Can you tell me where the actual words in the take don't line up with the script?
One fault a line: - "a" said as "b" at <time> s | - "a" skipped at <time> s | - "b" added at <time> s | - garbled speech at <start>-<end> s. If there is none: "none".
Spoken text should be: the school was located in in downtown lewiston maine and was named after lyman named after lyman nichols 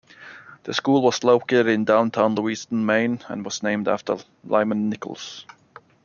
- "in" skipped at 1.9 s
- "named after lyman" skipped at 4.9 s